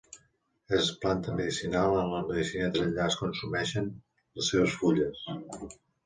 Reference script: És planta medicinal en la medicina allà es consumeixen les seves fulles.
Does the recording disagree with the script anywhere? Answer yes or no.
no